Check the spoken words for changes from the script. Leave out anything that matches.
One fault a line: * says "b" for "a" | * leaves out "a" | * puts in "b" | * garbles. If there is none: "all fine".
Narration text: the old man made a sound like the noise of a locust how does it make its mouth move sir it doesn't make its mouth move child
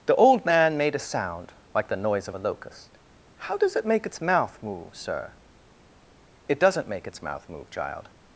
all fine